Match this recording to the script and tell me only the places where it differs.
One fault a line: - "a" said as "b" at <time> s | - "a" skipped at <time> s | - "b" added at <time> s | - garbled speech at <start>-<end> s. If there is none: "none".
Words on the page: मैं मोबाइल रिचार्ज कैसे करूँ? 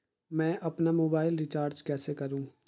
- "अपना" added at 0.6 s